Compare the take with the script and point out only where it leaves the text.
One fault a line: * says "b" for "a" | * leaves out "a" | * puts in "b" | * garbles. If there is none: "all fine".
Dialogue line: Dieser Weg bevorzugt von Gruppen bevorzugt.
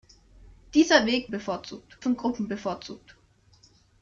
all fine